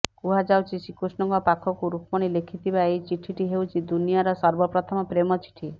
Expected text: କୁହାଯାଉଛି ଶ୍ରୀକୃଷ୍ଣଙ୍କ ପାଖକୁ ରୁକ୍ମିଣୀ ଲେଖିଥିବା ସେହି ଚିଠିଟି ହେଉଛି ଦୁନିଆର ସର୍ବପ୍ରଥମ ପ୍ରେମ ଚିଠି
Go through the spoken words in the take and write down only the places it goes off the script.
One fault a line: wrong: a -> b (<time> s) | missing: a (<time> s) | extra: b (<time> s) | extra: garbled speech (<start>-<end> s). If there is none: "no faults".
wrong: ସେହି -> ଏହି (2.9 s)